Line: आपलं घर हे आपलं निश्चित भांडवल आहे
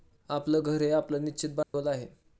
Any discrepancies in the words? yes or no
no